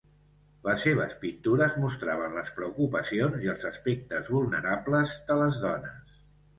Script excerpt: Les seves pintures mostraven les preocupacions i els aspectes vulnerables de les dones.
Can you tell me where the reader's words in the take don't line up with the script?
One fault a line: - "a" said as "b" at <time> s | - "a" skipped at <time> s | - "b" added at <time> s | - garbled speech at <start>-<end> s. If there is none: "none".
none